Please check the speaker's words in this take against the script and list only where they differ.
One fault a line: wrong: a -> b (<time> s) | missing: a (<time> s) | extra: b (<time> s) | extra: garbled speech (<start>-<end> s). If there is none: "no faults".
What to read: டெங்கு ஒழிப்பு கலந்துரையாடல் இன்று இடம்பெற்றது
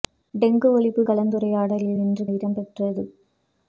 no faults